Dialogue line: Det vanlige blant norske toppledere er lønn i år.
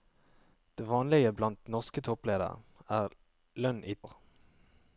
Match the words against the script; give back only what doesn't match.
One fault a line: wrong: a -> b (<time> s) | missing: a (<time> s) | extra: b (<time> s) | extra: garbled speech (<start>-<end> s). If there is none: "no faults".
no faults